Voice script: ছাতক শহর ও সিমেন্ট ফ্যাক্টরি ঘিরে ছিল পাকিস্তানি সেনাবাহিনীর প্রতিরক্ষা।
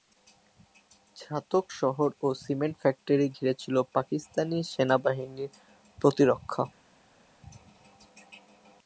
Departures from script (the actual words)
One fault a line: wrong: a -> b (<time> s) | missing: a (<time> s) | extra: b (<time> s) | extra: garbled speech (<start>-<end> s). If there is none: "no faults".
no faults